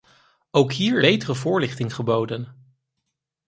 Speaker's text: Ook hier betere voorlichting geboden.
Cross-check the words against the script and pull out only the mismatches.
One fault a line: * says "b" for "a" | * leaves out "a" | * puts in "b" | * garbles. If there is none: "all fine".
all fine